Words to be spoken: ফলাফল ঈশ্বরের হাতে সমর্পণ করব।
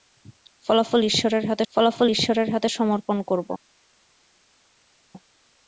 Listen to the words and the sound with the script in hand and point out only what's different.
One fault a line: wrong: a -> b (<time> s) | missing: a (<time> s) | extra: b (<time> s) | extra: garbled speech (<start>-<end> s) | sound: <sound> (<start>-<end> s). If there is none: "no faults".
extra: ফলাফল ঈশ্বরের হাতে (1.7 s)